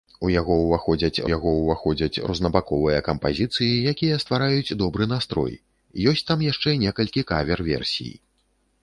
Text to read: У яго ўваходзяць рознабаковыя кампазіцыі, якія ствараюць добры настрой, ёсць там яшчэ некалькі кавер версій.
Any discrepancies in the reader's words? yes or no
yes